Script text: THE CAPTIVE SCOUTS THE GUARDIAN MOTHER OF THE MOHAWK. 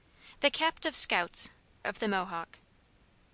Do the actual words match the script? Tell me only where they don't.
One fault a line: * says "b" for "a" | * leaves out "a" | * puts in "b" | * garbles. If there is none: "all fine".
* leaves out "THE GUARDIAN MOTHER"